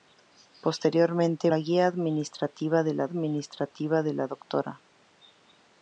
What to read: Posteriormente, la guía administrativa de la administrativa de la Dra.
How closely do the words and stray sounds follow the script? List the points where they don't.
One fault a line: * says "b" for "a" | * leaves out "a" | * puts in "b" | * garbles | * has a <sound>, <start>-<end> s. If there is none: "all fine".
all fine